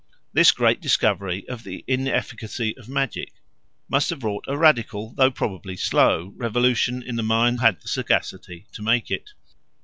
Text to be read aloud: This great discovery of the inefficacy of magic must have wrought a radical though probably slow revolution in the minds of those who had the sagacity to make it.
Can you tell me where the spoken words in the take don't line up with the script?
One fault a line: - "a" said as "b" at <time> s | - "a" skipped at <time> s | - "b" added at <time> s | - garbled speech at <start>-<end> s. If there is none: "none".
- "of those who" skipped at 7.6 s